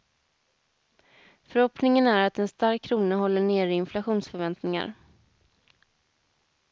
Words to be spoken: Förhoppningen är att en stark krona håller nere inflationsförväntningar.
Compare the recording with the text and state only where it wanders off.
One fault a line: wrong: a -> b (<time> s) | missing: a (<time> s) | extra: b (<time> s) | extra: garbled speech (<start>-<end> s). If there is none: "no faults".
no faults